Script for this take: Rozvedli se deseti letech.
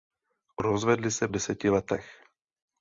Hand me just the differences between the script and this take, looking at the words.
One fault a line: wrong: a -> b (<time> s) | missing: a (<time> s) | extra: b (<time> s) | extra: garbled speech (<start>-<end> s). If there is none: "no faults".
no faults